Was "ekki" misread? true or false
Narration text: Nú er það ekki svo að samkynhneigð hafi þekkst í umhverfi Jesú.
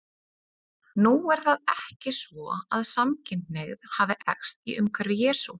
false